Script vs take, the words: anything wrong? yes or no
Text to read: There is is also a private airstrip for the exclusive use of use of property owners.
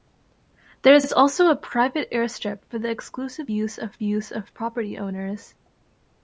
no